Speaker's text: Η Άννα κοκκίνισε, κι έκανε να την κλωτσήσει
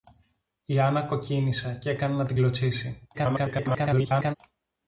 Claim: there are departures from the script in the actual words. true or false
true